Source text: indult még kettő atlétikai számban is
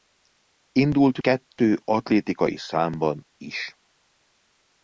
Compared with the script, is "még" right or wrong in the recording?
wrong